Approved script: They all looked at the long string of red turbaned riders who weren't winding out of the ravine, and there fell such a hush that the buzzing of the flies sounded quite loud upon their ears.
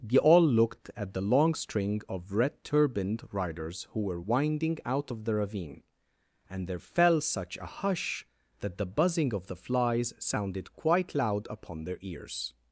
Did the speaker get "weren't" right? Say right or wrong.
wrong